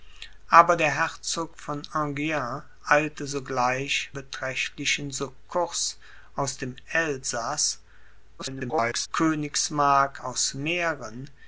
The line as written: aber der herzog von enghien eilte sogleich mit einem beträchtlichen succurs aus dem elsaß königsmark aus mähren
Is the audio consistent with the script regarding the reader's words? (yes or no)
no